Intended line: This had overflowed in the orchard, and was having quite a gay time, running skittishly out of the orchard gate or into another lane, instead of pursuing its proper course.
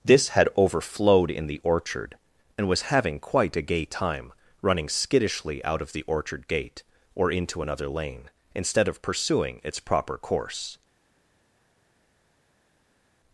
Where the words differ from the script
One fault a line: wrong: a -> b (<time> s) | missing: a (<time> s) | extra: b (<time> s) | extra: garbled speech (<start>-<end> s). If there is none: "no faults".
no faults